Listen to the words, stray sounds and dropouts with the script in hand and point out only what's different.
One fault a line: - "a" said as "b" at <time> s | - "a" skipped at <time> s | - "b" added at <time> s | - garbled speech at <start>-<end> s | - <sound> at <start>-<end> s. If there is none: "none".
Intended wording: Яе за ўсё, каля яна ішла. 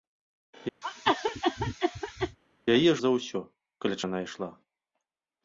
- cough at 0.8-2.4 s